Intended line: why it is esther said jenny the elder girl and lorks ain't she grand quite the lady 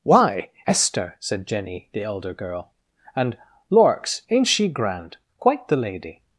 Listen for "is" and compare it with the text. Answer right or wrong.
wrong